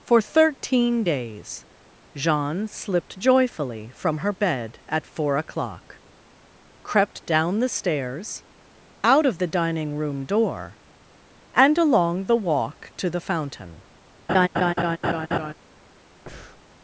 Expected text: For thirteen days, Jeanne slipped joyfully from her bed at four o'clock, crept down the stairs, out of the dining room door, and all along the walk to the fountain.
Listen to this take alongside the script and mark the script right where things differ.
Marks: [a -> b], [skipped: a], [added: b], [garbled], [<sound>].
For thirteen days, Jeanne slipped joyfully from her bed at four o'clock, crept down the stairs, out of the dining room door, and [skipped: all] along the walk to the fountain. [laugh] [breath]